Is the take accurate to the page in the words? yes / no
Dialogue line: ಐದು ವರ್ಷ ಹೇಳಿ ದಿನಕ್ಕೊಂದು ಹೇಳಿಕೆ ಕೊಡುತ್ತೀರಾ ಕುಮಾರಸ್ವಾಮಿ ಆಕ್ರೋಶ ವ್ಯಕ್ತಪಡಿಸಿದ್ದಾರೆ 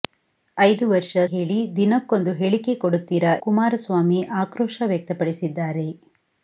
yes